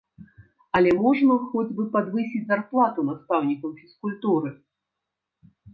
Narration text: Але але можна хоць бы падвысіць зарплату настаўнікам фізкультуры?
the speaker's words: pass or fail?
fail